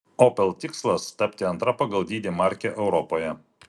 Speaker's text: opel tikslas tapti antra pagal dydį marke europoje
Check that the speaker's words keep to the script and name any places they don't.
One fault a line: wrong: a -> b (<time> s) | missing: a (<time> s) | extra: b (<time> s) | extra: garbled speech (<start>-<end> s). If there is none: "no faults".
no faults